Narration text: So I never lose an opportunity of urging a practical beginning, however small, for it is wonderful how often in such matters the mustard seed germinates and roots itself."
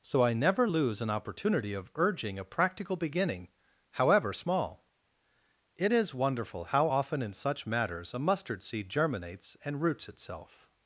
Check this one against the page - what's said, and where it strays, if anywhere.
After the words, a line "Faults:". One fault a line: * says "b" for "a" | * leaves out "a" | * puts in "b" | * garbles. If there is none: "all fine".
So I never lose an opportunity of urging a practical beginning, however small, it is wonderful how often in such matters a mustard seed germinates and roots itself."
Faults:
* leaves out "for"
* says "a" for "the"